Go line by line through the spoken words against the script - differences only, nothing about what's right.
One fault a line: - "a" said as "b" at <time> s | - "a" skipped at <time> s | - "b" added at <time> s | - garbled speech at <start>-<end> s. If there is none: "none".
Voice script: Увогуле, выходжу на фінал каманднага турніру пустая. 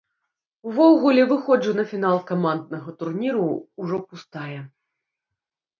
- "ўжо" added at 3.9 s